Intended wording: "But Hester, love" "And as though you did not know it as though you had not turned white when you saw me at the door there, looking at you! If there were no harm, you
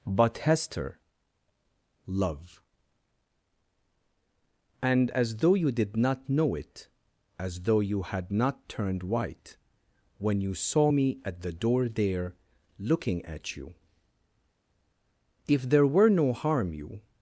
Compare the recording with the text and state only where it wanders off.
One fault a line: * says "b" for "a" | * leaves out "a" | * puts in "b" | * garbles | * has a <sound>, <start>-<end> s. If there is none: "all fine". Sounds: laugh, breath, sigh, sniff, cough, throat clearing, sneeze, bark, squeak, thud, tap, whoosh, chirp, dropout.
all fine